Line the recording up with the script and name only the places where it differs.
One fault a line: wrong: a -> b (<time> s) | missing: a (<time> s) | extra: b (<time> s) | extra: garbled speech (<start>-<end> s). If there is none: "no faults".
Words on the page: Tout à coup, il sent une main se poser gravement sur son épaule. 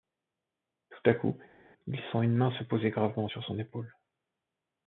no faults